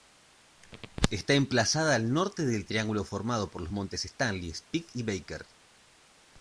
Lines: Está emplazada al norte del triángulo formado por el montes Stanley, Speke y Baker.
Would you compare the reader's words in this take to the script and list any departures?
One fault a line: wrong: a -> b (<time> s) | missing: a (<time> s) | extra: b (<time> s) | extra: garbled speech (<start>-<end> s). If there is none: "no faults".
wrong: el -> los (3.6 s)